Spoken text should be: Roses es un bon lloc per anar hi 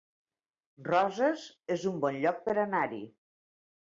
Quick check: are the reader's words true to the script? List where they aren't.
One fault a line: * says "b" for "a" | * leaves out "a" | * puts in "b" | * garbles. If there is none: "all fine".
all fine